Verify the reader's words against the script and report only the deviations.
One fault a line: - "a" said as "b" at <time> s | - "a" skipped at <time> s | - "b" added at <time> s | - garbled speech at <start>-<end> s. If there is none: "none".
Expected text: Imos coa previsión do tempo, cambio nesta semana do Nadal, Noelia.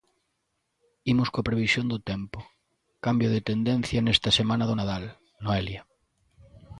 - "de tendencia" added at 3.3 s